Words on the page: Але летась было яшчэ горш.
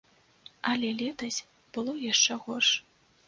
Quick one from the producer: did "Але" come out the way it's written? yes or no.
yes